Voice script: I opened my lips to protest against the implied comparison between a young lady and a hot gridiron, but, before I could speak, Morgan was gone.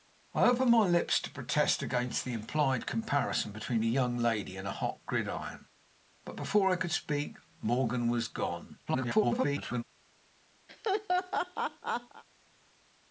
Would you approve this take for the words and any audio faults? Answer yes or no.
no